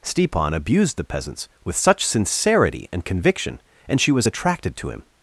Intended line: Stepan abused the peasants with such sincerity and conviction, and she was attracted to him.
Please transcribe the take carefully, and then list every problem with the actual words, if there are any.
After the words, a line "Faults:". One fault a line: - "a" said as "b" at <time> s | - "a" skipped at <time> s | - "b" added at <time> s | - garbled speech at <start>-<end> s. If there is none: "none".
Stepan abused the peasants with such sincerity and conviction, and she was attracted to him.
Faults:
none